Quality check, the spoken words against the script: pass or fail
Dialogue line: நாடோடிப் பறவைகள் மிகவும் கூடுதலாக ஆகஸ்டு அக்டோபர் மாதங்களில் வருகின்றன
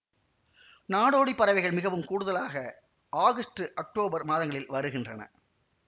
pass